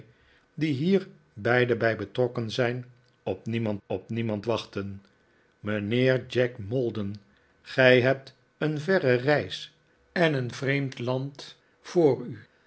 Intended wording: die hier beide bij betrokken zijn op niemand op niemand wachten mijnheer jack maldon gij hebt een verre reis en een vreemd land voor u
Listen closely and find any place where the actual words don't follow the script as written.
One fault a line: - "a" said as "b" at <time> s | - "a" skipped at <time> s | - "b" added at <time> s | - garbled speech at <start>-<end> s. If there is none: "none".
none